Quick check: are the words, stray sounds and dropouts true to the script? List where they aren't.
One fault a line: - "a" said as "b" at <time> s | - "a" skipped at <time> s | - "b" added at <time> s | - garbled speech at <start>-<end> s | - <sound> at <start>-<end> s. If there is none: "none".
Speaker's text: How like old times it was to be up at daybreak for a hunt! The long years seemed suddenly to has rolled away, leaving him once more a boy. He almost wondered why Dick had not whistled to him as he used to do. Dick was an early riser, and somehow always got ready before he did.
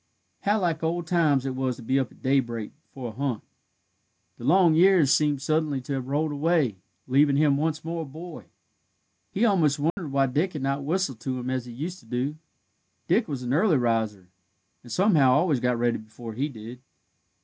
- "has" said as "have" at 5.9 s
- dropout at 9.9-10.0 s